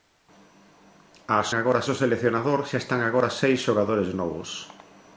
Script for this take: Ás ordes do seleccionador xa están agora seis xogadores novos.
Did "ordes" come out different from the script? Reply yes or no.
yes